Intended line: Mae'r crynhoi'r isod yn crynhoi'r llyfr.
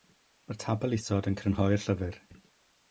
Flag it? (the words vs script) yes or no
yes